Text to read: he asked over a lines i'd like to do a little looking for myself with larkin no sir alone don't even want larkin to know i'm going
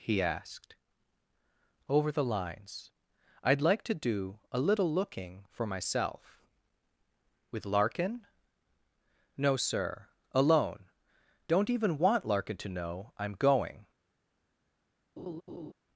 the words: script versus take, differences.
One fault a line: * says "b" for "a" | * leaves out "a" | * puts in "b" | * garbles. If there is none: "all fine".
* says "the" for "a"